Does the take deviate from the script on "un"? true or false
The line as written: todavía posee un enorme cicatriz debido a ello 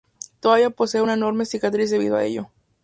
true